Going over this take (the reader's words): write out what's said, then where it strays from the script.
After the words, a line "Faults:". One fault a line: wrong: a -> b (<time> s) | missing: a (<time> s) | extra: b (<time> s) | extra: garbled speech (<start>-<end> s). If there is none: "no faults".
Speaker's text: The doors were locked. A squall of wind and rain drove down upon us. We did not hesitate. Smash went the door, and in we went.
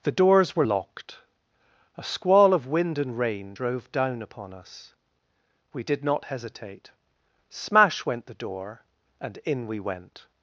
The doors were locked. A squall of wind and rain drove down upon us. We did not hesitate. Smash went the door, and in we went.
Faults:
no faults